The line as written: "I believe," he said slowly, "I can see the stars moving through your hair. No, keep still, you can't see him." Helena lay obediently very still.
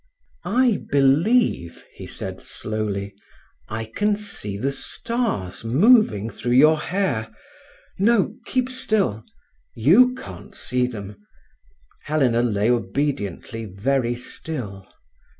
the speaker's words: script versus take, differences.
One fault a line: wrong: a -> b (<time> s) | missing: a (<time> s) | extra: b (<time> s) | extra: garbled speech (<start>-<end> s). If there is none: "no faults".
wrong: him -> them (10.9 s)